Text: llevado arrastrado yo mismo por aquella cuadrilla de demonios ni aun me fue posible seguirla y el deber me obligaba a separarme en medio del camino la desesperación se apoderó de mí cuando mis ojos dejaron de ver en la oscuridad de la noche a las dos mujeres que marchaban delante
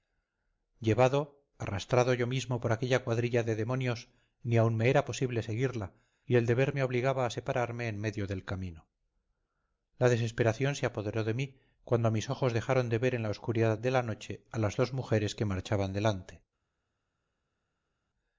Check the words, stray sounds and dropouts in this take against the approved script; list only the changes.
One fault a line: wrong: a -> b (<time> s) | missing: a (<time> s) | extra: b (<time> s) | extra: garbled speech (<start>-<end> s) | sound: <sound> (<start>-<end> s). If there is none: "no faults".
wrong: fue -> era (4.9 s)